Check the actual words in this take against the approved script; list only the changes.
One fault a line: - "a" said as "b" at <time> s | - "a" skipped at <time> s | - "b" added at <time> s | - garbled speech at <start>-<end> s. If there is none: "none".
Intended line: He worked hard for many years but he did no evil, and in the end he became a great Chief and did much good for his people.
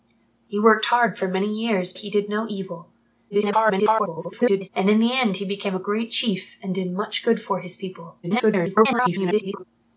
- "but" skipped at 1.9 s
- garbled speech at 3.3-4.7 s
- garbled speech at 8.2-9.6 s